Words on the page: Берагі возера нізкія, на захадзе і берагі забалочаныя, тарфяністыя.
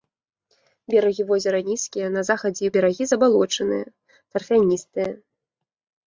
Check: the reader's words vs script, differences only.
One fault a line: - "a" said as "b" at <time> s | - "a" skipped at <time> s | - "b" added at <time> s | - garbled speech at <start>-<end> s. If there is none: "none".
none